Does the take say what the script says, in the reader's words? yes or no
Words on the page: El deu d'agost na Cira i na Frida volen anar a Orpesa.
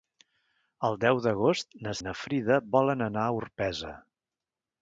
no